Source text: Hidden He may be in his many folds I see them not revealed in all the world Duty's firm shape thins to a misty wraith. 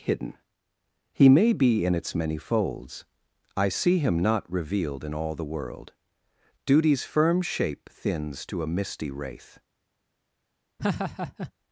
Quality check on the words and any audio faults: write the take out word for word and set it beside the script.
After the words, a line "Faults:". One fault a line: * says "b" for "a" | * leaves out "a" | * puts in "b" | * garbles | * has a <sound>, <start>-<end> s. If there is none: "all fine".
Hidden He may be in its many folds I see him not revealed in all the world Duty's firm shape thins to a misty wraith.
Faults:
* says "its" for "his"
* says "him" for "them"
* has a laugh, 10.8-11.5 s